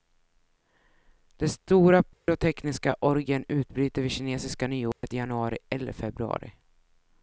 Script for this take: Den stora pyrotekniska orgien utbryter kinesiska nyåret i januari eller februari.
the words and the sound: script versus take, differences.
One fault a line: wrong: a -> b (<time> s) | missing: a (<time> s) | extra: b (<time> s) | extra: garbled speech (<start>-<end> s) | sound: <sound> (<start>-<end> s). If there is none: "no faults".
sound: dropout (2.1-2.3 s)
extra: vid (4.0 s)
sound: dropout (4.9-5.0 s)